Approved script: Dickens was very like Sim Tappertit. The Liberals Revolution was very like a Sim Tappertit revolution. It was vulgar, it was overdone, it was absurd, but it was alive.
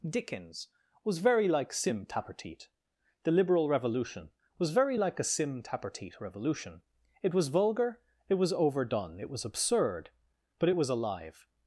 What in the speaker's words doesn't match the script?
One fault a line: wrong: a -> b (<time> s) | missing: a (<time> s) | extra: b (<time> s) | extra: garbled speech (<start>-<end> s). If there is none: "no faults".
wrong: Liberals -> Liberal (3.3 s)